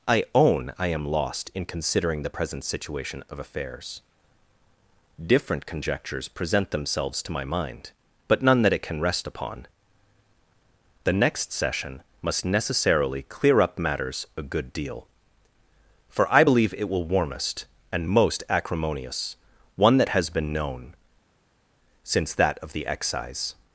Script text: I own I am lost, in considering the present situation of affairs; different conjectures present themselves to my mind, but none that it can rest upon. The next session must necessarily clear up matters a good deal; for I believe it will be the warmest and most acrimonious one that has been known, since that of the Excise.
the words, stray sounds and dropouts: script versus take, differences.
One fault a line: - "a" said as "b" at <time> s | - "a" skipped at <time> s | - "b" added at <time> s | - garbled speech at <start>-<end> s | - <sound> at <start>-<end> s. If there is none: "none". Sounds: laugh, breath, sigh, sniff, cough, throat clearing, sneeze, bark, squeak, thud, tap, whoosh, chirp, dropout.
- "be the" skipped at 17.1 s